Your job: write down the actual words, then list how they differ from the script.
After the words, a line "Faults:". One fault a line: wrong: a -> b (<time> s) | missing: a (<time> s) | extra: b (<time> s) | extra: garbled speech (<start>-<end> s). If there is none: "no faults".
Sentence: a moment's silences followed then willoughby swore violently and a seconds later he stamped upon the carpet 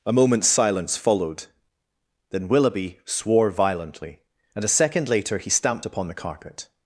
a moment's silence followed then willoughby swore violently and a second later he stamped upon the carpet
Faults:
wrong: silences -> silence (0.5 s)
wrong: seconds -> second (4.7 s)